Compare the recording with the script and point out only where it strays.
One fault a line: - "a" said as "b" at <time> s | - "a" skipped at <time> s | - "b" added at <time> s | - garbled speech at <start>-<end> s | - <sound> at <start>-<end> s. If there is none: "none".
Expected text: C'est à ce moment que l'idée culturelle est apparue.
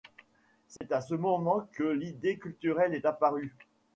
- dropout at 0.8-0.8 s